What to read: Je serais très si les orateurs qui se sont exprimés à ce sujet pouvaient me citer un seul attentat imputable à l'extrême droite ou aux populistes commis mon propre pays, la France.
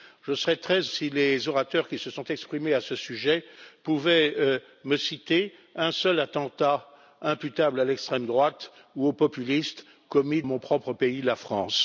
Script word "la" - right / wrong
right